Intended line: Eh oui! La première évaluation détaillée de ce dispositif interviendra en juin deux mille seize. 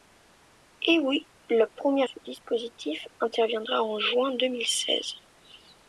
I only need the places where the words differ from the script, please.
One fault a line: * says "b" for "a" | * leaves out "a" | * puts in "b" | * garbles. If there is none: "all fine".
* leaves out "évaluation détaillée de"